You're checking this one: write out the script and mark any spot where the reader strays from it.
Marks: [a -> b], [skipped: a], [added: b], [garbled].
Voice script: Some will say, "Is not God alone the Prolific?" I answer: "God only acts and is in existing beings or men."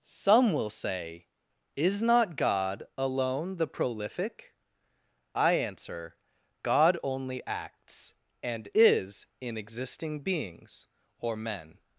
Some will say, "Is not God alone the Prolific?" I answer: "God only acts and is in existing beings or men."